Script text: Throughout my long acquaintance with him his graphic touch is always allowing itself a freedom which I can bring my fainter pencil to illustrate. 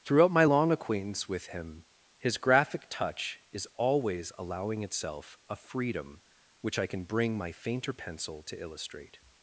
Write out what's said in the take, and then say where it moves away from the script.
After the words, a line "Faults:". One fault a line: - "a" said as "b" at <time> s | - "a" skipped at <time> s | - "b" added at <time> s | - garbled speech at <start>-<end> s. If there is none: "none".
Throughout my long acquaintance with him his graphic touch is always allowing itself a freedom which I can bring my fainter pencil to illustrate.
Faults:
none